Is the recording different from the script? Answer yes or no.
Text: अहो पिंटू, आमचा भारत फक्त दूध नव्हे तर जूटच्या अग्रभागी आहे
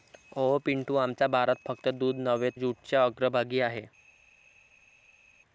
yes